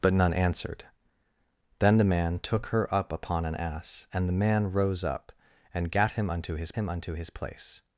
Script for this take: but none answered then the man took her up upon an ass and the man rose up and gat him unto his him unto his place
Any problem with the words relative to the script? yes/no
no